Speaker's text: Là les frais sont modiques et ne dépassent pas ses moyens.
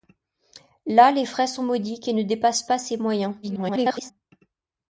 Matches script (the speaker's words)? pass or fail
fail